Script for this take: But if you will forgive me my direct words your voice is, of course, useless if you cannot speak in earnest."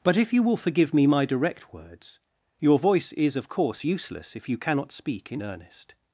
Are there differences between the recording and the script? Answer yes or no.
no